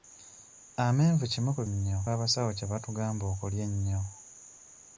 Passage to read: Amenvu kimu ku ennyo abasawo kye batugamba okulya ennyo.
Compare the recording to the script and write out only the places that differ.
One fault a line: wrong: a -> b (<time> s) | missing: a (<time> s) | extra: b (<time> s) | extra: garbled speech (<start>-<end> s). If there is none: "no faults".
no faults